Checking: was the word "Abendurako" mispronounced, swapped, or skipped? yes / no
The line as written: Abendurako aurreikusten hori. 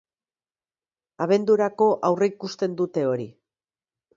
no